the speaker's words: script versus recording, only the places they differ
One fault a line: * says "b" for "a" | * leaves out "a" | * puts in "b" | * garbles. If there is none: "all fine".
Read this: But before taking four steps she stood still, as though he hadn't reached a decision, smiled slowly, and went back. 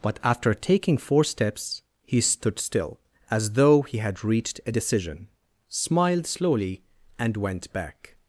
* says "after" for "before"
* says "he" for "she"
* says "had" for "hadn't"